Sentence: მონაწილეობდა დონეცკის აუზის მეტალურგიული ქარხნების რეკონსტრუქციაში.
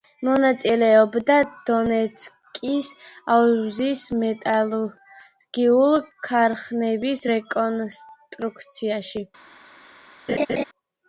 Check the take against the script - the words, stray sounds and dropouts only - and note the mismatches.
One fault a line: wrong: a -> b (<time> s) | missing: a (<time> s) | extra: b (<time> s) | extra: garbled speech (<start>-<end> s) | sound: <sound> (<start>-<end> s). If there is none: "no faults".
sound: laugh (10.3-10.6 s)